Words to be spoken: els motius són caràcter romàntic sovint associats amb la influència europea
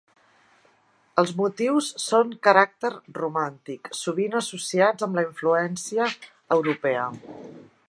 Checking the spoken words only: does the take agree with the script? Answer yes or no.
yes